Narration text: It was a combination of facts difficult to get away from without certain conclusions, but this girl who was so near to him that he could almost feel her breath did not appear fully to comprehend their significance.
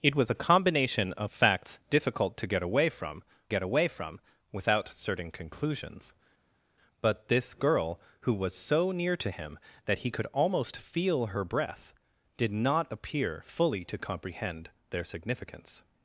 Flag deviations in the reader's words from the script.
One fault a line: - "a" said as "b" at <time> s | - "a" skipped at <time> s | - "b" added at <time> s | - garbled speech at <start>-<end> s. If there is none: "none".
- "get away from" added at 3.5 s